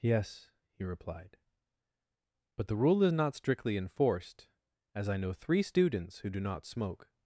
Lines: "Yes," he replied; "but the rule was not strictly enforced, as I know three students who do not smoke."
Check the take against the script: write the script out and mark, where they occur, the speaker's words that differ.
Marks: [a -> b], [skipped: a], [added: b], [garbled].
"Yes," he replied; "but the rule [was -> is] not strictly enforced, as I know three students who do not smoke."